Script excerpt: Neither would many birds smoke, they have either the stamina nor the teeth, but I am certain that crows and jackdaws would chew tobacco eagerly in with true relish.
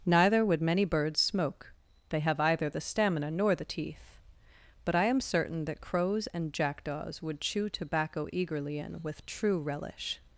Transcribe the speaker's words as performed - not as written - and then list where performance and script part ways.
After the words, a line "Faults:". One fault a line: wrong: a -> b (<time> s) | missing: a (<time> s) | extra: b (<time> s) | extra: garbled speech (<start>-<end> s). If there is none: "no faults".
Neither would many birds smoke, they have either the stamina nor the teeth, but I am certain that crows and jackdaws would chew tobacco eagerly in with true relish.
Faults:
no faults